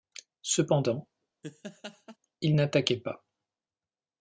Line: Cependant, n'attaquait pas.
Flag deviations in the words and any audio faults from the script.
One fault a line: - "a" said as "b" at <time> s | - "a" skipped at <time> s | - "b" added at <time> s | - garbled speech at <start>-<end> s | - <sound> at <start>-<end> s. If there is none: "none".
- laugh at 1.4-2.2 s
- "il" added at 2.4 s